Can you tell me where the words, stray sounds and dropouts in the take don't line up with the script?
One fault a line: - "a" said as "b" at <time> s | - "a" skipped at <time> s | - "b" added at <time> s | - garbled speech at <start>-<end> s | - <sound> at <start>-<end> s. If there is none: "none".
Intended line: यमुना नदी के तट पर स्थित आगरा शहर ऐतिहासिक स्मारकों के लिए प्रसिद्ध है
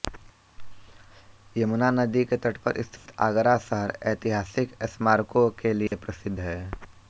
- dropout at 3.0-3.1 s
- dropout at 5.9-5.9 s